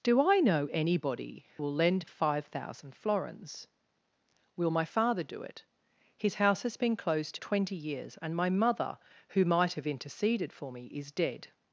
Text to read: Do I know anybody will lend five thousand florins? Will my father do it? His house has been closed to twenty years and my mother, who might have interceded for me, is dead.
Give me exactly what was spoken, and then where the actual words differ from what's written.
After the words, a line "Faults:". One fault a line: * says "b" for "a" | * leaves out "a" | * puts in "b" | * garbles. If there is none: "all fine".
Do I know anybody will lend five thousand florins? Will my father do it? His house has been closed to twenty years and my mother, who might have interceded for me, is dead.
Faults:
all fine